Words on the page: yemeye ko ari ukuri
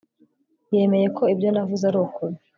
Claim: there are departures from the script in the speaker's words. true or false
true